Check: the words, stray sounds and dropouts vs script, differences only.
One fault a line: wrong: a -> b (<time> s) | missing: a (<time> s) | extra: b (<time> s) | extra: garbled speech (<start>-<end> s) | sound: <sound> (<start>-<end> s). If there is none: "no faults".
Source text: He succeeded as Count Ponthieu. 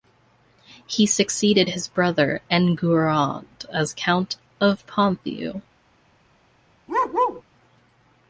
extra: his brother Enguerrand (1.7 s)
extra: of (4.6 s)
sound: bark (6.9-7.4 s)